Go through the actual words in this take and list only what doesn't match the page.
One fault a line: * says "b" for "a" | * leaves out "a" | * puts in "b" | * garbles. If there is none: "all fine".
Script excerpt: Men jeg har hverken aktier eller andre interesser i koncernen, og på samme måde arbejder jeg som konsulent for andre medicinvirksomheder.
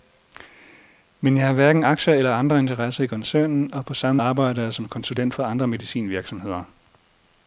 * leaves out "måde"